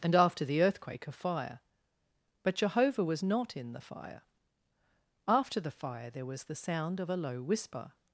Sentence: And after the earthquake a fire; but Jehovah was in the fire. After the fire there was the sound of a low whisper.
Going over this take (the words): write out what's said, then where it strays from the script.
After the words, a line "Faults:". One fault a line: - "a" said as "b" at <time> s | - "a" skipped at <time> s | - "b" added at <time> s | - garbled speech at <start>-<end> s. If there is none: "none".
And after the earthquake a fire; but Jehovah was not in the fire. After the fire there was the sound of a low whisper.
Faults:
- "not" added at 3.2 s